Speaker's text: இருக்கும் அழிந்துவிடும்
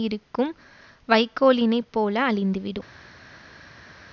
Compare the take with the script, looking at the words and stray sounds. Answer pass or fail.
fail